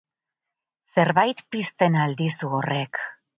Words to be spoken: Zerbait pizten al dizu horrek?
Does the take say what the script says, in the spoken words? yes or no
yes